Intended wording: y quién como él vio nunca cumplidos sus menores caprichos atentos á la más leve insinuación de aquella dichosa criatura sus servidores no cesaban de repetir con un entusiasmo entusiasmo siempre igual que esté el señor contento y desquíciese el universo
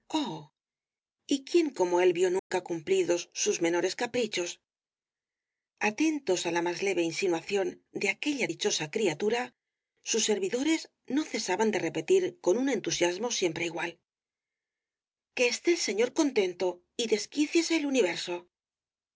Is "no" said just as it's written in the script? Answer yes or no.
yes